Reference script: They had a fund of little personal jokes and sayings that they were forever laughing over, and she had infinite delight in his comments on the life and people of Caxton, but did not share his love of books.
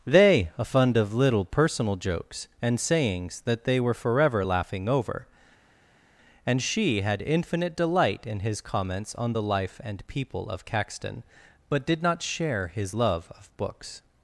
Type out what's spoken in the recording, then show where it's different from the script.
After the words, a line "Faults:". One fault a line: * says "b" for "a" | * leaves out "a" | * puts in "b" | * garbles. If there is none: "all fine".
They a fund of little personal jokes and sayings that they were forever laughing over, and she had infinite delight in his comments on the life and people of Caxton, but did not share his love of books.
Faults:
* leaves out "had"